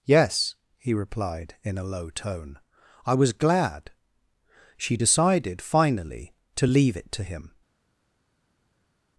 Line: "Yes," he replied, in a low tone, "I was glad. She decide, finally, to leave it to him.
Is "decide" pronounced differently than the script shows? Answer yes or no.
yes